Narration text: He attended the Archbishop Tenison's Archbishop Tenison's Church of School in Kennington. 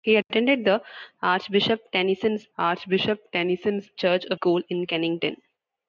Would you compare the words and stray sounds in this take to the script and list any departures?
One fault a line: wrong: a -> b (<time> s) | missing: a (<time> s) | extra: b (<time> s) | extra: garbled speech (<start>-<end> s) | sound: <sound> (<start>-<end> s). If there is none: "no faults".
no faults